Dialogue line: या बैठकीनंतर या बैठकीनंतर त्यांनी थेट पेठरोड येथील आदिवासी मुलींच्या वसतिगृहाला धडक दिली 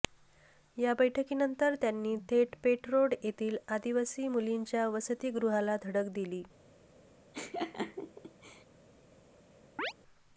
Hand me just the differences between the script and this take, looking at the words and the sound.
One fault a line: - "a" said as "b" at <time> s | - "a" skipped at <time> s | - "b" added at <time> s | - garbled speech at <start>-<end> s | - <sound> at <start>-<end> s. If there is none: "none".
- "या बैठकीनंतर" skipped at 1.8 s
- laugh at 7.3-8.6 s
- chirp at 9.8-9.9 s